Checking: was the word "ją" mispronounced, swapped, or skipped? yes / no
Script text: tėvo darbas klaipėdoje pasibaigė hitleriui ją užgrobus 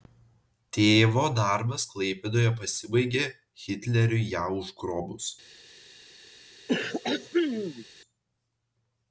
no